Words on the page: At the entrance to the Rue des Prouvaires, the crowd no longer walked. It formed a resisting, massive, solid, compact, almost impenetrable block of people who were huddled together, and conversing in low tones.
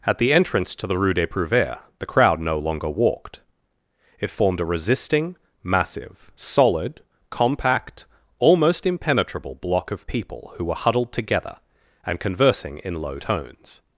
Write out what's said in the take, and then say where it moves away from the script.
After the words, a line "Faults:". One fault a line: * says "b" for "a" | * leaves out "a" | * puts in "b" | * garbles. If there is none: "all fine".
At the entrance to the Rue des Prouvaires, the crowd no longer walked. It formed a resisting, massive, solid, compact, almost impenetrable block of people who were huddled together, and conversing in low tones.
Faults:
all fine